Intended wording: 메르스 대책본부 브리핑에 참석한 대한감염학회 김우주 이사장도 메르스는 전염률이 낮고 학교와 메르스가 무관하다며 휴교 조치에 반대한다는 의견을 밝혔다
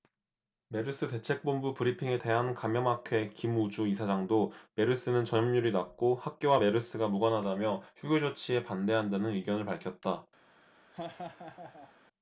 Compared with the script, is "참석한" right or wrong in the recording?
wrong